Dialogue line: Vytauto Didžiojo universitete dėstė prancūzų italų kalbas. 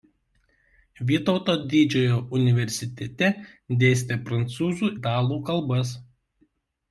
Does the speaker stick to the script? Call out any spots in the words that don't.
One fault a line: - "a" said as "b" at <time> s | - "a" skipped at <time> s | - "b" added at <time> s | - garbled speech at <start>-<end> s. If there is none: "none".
none